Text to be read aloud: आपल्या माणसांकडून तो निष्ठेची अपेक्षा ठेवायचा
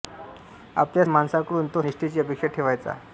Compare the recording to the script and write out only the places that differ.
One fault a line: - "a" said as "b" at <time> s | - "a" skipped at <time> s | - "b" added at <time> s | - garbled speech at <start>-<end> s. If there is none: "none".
none